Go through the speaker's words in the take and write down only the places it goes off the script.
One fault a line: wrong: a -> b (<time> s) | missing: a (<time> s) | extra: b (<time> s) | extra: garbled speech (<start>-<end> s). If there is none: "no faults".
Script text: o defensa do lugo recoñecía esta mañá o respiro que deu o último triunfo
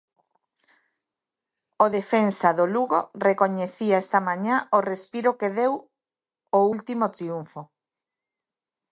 no faults